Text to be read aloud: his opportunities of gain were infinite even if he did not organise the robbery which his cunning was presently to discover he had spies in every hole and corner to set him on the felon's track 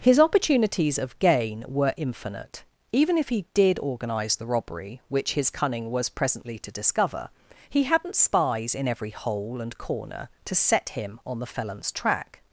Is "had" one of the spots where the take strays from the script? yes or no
yes